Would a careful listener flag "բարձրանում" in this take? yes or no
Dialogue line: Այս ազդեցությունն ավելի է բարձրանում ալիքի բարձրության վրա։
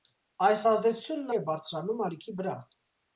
no